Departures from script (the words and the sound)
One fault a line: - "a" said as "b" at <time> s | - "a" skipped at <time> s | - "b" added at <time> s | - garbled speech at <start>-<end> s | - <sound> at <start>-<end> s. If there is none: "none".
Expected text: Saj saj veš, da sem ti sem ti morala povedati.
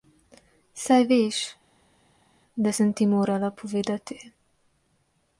- "saj" skipped at 1.0 s
- "sem ti" skipped at 3.1 s